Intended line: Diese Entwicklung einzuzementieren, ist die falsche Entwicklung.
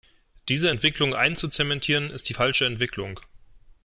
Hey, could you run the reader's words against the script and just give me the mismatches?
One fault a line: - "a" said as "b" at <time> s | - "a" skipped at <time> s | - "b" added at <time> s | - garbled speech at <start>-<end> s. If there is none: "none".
none